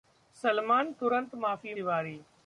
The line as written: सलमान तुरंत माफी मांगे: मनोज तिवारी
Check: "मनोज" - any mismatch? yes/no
yes